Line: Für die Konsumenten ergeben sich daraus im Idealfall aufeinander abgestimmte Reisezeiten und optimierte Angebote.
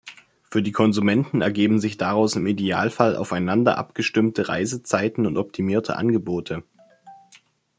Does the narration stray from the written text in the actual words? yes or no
no